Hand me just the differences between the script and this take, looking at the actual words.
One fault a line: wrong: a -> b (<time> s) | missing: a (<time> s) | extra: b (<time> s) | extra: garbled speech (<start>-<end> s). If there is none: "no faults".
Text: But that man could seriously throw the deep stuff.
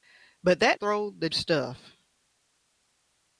missing: man could seriously (0.8 s)
missing: deep (1.3 s)